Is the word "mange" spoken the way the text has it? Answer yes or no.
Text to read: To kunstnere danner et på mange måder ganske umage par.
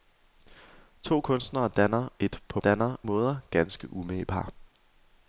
no